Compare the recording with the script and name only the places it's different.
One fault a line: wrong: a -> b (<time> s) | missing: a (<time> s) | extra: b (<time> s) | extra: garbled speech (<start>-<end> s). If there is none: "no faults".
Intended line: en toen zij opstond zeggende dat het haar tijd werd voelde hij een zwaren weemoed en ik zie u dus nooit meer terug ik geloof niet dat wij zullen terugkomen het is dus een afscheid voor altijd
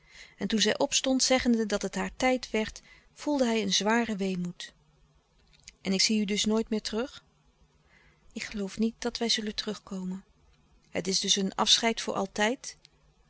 no faults